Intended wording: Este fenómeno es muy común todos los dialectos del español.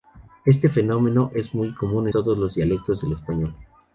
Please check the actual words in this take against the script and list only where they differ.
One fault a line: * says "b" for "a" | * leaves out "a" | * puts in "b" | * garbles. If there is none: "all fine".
all fine